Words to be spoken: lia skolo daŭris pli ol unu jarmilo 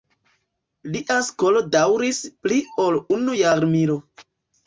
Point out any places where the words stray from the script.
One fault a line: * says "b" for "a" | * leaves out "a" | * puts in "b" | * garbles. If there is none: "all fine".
all fine